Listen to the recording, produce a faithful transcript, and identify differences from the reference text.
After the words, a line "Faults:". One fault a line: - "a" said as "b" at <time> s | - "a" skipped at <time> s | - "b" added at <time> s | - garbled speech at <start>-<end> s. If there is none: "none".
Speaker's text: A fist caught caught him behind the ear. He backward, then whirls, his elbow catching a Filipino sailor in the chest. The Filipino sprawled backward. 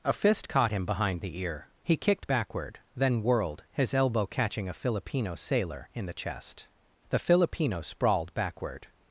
A fist caught him behind the ear. He kicked backward, then whirled, his elbow catching a Filipino sailor in the chest. The Filipino sprawled backward.
Faults:
- "caught" skipped at 0.7 s
- "kicked" added at 1.9 s
- "whirls" said as "whirled" at 3.2 s